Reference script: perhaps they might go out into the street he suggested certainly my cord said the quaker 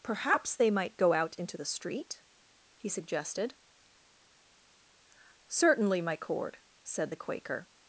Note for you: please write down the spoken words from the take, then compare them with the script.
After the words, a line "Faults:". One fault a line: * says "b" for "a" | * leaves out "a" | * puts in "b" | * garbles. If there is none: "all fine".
perhaps they might go out into the street he suggested certainly my cord said the quaker
Faults:
all fine